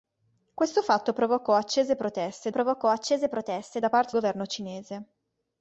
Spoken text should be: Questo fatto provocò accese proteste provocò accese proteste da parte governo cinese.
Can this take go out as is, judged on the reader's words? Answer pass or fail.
pass